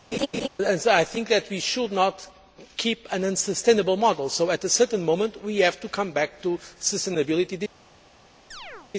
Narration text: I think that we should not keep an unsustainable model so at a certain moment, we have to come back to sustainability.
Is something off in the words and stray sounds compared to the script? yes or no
yes